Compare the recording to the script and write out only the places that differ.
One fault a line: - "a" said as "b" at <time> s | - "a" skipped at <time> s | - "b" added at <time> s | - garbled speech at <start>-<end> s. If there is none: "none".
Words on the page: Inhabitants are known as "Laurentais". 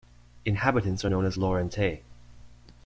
none